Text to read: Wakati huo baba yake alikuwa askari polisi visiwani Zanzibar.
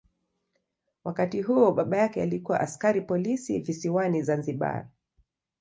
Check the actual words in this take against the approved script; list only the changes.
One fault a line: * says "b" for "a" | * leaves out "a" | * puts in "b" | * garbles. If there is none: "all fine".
all fine